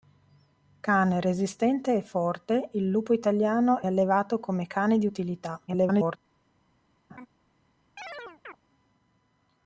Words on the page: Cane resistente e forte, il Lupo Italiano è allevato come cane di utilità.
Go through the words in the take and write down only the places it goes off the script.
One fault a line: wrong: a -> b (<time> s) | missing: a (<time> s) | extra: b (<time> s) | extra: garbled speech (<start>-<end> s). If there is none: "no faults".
missing: è (3.8 s)
extra: garbled speech (5.7-6.2 s)